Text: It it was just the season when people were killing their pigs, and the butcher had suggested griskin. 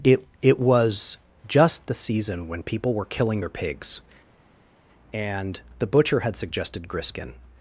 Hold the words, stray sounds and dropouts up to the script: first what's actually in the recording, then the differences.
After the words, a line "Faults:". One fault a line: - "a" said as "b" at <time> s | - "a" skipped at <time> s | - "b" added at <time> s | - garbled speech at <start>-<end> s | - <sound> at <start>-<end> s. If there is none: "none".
It it was just the season when people were killing their pigs, and the butcher had suggested griskin.
Faults:
none